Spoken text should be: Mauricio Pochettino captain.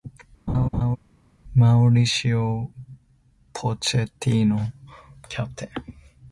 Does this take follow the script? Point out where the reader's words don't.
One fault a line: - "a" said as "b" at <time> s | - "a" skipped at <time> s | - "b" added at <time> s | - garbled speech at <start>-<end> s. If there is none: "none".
none